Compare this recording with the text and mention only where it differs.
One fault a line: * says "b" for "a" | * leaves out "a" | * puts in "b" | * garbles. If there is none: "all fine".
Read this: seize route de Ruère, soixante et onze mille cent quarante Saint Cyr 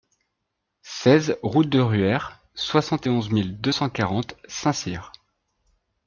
* puts in "deux"